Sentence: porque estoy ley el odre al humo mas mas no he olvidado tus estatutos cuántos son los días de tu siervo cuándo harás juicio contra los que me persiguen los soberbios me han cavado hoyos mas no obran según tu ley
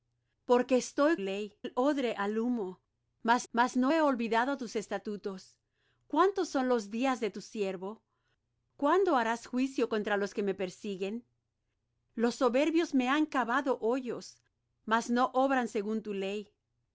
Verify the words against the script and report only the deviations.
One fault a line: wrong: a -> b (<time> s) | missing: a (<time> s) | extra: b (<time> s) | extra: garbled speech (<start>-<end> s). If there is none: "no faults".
no faults